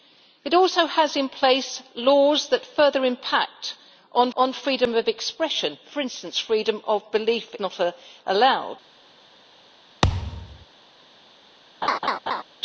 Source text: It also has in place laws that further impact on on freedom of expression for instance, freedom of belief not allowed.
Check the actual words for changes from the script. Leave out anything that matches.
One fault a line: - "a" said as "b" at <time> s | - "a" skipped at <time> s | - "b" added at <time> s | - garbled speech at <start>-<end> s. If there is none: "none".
none